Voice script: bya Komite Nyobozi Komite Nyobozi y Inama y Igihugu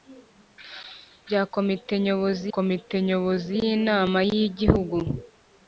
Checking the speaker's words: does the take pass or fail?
pass